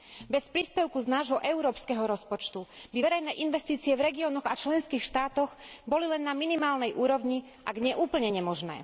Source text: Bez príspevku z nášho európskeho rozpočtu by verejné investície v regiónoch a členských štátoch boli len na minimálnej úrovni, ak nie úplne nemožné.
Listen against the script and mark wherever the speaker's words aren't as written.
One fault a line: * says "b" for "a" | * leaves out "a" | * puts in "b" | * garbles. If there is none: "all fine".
all fine